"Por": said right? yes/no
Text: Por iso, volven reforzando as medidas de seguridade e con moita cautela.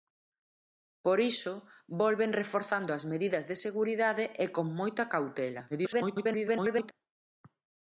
yes